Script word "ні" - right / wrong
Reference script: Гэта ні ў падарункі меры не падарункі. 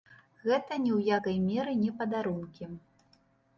right